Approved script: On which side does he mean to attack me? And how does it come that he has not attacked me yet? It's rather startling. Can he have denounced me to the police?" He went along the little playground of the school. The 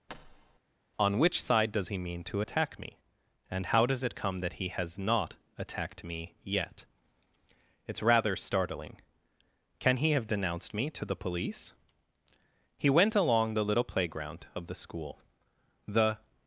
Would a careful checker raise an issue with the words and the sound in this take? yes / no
yes